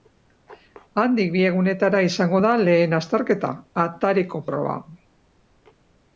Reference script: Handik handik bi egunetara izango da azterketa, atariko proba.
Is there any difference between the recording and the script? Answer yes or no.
yes